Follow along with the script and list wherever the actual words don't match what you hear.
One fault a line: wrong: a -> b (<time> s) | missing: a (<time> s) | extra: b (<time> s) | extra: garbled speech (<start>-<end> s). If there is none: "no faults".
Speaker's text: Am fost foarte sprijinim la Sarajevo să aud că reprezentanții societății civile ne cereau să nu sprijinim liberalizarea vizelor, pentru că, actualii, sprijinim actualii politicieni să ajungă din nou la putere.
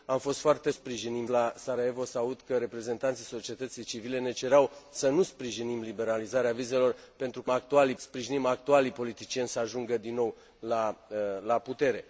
no faults